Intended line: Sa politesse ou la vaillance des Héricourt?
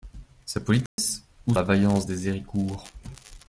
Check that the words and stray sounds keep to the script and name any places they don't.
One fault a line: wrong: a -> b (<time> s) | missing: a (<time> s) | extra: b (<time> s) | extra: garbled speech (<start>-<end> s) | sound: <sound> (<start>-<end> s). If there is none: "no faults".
sound: dropout (0.9-1.0 s)